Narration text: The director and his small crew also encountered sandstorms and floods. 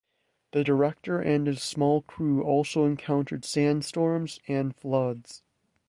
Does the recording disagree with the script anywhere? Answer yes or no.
no